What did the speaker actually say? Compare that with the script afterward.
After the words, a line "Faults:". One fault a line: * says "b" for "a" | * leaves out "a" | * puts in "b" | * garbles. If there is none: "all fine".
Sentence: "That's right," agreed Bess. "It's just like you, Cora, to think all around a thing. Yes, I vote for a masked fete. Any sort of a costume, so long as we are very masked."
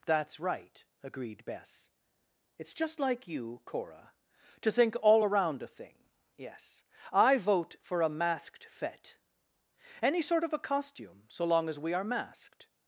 "That's right," agreed Bess. "It's just like you, Cora, to think all around a thing. Yes, I vote for a masked fete. Any sort of a costume, so long as we are masked."
Faults:
* leaves out "very"